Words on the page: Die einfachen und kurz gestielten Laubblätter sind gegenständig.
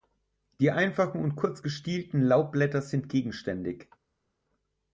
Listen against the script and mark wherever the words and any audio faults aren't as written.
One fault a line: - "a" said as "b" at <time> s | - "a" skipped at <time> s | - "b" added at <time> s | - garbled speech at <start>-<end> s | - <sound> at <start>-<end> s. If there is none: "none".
none